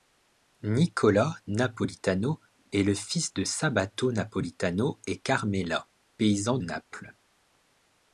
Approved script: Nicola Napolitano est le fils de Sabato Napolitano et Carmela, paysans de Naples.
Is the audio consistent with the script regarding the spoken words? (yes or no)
no